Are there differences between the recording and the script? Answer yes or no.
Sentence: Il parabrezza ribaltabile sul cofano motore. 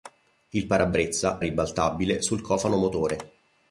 no